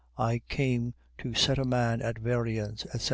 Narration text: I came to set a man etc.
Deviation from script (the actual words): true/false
true